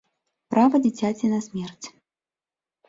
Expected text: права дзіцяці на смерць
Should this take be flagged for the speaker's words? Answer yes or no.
no